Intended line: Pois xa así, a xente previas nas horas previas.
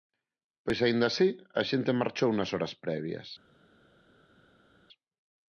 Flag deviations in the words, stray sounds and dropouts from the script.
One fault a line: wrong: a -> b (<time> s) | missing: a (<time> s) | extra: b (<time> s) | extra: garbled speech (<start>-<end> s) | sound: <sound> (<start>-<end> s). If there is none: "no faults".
wrong: xa -> aínda (0.8 s)
wrong: previas -> marchou (2.0 s)